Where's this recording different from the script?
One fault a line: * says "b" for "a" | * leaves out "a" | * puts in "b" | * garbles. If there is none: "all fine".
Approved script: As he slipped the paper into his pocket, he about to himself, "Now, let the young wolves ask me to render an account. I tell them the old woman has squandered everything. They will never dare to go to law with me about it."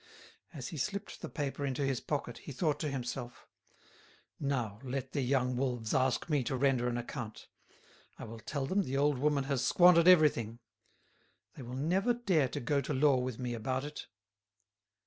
* says "thought" for "about"
* puts in "will"